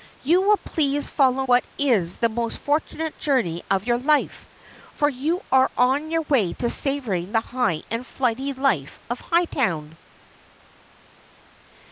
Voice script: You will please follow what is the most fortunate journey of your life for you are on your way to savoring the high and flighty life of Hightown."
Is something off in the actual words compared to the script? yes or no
no